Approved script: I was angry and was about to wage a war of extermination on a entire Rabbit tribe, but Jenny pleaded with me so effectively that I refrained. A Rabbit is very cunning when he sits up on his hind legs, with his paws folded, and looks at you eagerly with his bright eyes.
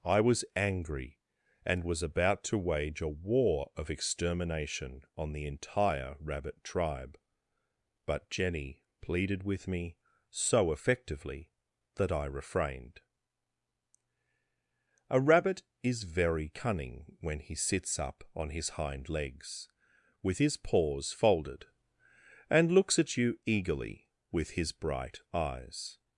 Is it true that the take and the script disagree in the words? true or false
true